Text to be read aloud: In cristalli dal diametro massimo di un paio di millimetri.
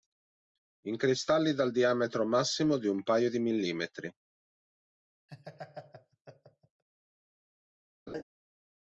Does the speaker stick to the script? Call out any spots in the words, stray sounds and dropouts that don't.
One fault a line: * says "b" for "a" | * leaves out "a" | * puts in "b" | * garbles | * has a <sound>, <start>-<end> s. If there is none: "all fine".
* has a laugh, 5.3-6.8 s
* has a laugh, 8.1-8.2 s